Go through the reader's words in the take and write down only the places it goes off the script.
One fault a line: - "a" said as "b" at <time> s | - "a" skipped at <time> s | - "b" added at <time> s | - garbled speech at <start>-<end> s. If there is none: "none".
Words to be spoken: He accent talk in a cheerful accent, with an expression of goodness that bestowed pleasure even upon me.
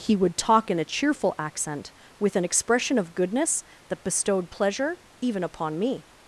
- "accent" said as "would" at 0.1 s